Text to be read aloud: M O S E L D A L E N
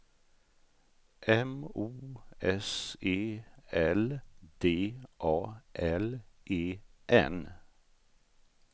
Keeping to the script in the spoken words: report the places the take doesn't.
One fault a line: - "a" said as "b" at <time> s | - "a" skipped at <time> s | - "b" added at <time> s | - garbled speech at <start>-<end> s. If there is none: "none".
none